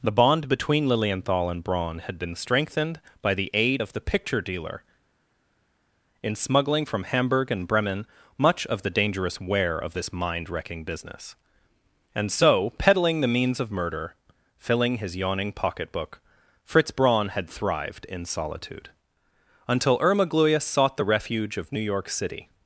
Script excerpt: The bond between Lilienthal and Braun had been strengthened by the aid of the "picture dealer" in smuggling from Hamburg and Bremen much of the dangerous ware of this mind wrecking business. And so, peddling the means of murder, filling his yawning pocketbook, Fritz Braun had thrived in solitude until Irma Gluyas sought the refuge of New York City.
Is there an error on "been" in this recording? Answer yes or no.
no